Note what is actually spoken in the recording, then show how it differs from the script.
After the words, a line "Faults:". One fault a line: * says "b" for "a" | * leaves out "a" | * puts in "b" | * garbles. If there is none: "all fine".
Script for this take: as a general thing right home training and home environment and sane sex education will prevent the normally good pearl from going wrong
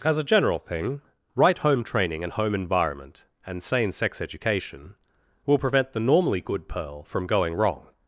as a general thing right home training and home environment and sane sex education will prevent the normally good pearl from going wrong
Faults:
all fine